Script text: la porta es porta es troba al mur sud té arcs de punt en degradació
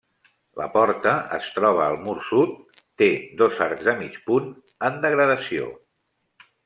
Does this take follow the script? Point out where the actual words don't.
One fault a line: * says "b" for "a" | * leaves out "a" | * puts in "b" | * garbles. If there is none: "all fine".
* leaves out "porta es"
* puts in "dos"
* puts in "mig"